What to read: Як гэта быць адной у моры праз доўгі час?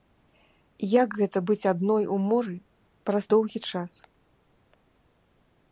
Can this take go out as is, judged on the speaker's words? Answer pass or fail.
pass